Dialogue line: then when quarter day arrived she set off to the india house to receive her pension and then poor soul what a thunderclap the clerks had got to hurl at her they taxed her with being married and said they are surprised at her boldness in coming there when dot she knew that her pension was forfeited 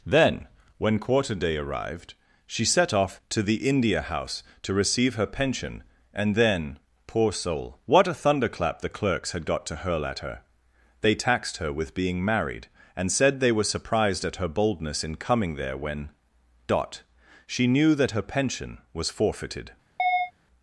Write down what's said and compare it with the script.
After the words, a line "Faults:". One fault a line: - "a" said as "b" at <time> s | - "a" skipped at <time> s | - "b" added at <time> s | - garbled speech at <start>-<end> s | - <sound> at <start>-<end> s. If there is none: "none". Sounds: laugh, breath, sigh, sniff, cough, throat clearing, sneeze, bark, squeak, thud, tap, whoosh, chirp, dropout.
then when quarter day arrived she set off to the india house to receive her pension and then poor soul what a thunderclap the clerks had got to hurl at her they taxed her with being married and said they were surprised at her boldness in coming there when dot she knew that her pension was forfeited
Faults:
- "are" said as "were" at 13.5 s
- chirp at 20.0-20.3 s